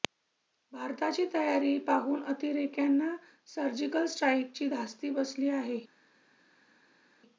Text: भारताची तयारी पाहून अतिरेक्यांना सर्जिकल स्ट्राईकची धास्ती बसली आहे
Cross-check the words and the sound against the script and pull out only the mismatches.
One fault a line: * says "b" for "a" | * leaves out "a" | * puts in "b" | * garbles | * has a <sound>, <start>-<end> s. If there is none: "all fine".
all fine